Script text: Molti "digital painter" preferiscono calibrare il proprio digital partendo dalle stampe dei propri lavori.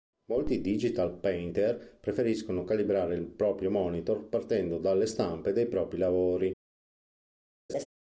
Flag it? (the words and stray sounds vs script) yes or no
yes